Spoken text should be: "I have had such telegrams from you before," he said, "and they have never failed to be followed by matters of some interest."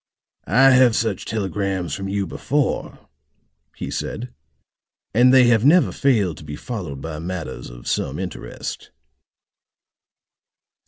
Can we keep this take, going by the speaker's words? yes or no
no